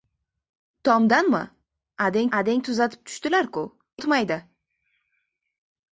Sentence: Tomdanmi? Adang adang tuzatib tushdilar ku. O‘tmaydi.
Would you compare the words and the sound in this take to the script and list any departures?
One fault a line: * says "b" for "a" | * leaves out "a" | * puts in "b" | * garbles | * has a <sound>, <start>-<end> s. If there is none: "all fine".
all fine